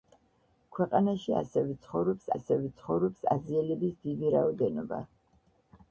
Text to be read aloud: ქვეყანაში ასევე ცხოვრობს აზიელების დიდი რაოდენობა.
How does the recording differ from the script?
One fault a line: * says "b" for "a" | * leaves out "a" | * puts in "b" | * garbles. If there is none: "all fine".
* puts in "ასევე ცხოვრობს"